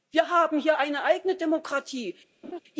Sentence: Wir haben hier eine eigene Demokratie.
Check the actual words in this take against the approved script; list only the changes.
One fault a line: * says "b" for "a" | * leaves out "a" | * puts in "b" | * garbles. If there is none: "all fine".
all fine